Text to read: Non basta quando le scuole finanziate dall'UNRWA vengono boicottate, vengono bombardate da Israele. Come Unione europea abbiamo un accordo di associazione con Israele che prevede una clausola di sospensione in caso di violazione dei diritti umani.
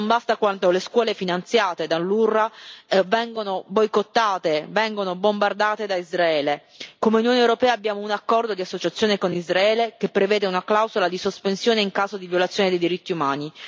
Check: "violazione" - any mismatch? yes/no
no